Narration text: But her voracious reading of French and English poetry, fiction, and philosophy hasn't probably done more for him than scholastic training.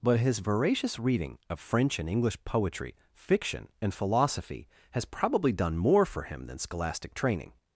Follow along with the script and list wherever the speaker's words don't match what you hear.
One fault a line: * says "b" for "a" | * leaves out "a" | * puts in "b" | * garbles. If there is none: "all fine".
* says "his" for "her"
* says "has" for "hasn't"